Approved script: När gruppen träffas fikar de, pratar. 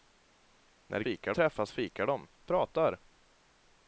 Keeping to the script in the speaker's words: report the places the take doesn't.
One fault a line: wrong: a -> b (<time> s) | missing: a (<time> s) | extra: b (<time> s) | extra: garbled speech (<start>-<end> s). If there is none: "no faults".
wrong: gruppen -> fikar (1.0 s)